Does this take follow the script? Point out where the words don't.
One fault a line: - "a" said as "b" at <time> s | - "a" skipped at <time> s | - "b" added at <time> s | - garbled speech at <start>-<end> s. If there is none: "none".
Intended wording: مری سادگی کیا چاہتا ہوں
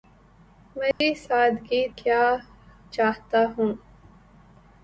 none